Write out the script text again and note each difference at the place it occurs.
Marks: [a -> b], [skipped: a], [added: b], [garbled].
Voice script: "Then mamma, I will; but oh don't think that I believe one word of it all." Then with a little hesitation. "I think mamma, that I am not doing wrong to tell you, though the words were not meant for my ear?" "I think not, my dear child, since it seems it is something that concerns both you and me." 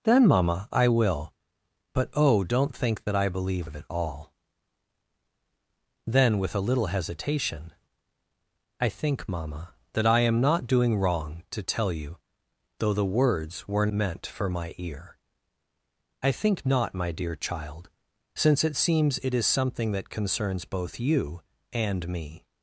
"Then mamma, I will; but oh don't think that I believe [skipped: one word] of it all." Then with a little hesitation. "I think mamma, that I am not doing wrong to tell you, though the words were [skipped: not] meant for my ear?" "I think not, my dear child, since it seems it is something that concerns both you and me."